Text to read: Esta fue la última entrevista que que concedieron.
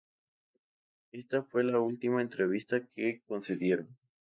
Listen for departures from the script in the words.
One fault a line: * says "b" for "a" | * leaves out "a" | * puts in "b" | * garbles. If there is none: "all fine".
* leaves out "que"